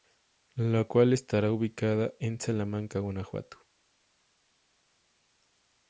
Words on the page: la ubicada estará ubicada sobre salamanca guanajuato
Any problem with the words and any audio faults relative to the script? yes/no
yes